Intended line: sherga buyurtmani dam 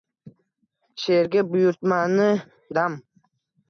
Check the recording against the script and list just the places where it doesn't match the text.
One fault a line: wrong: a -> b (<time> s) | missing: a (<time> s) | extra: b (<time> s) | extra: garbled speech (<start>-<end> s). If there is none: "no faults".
no faults